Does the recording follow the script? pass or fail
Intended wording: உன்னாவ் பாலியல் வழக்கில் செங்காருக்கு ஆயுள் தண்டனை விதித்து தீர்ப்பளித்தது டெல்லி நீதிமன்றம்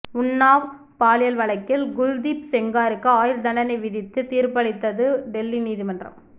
fail